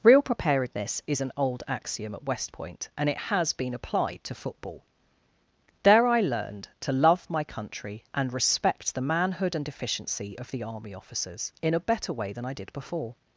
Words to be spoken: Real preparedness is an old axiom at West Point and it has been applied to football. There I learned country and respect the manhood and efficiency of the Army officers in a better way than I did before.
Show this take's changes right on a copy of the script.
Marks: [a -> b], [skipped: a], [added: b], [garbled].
Real preparedness is an old axiom at West Point and it has been applied to football. There I learned [added: to love my] country and respect the manhood and efficiency of the Army officers in a better way than I did before.